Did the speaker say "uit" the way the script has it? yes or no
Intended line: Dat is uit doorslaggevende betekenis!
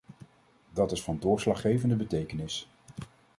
no